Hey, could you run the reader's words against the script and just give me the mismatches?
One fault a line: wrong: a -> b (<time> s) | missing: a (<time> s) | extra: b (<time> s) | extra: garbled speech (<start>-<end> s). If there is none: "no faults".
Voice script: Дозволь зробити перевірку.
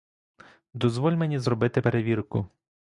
extra: мені (1.1 s)